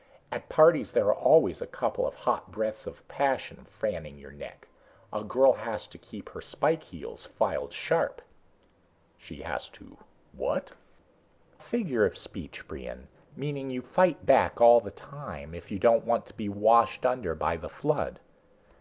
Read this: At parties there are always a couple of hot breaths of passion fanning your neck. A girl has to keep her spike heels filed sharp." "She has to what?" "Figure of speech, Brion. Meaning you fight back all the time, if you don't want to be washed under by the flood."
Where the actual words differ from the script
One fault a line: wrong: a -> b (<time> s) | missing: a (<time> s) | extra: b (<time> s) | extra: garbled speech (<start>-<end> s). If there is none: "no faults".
no faults